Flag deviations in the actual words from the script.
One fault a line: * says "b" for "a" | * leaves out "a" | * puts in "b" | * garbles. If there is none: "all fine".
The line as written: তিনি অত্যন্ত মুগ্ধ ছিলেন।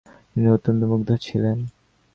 all fine